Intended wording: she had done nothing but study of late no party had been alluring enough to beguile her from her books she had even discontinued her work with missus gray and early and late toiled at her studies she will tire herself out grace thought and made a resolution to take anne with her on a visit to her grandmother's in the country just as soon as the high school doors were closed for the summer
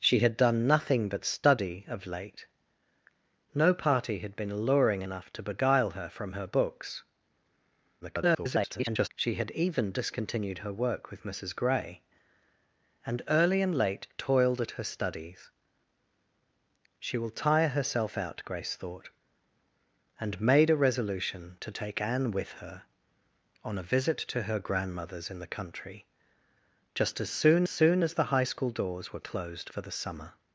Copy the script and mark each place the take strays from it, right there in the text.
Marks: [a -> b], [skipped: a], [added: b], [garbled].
she had done nothing but study of late no party had been alluring enough to beguile her from her books [garbled] she had even discontinued her work with missus gray and early and late toiled at her studies she will tire herself out grace thought and made a resolution to take anne with her on a visit to her grandmother's in the country just as soon [added: soon] as the high school doors were closed for the summer